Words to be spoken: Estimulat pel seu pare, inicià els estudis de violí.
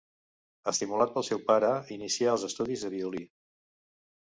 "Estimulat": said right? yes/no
yes